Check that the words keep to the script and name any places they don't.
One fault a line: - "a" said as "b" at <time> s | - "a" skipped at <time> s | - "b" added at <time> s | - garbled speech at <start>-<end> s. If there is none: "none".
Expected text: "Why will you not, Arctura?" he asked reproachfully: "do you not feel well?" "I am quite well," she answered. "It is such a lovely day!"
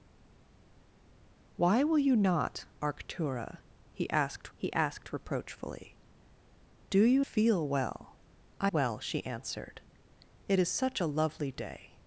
- "he asked" added at 4.6 s
- "not" skipped at 7.2 s
- "am quite" skipped at 8.7 s